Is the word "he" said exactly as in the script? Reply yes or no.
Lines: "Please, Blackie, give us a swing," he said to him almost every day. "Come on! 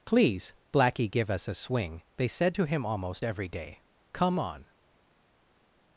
no